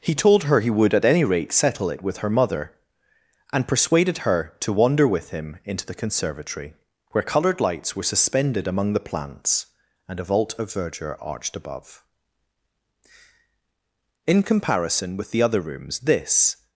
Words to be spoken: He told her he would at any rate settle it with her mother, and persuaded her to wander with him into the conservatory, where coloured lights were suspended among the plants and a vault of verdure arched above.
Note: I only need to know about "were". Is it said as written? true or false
true